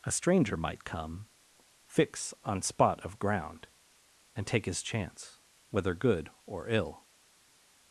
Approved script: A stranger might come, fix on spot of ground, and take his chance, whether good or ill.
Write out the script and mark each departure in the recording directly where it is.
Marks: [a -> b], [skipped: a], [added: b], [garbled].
A stranger might come, fix on spot of ground, and take his chance, whether good or ill.